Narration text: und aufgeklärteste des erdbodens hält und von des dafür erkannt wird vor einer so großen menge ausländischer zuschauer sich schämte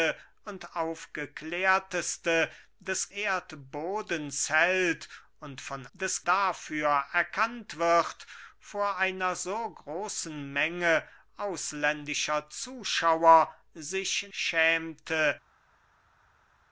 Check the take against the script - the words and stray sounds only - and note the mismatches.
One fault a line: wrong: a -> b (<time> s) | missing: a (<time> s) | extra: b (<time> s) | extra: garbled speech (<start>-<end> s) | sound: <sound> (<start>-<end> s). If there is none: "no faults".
no faults